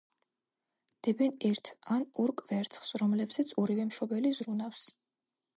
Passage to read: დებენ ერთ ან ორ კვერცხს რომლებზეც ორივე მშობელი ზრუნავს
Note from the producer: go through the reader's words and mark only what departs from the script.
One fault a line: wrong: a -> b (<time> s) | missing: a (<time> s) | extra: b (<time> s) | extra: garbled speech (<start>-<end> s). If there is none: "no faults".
no faults